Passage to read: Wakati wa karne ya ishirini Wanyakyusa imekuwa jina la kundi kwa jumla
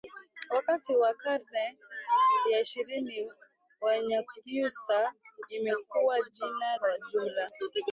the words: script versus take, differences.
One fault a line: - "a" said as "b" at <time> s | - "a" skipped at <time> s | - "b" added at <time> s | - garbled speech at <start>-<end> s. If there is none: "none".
- "la kundi" skipped at 6.8 s